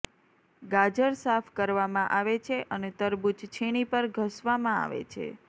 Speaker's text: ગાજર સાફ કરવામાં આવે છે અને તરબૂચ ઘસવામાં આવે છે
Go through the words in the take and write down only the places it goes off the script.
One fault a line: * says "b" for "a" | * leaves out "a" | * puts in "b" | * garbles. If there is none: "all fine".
* puts in "છીણી પર"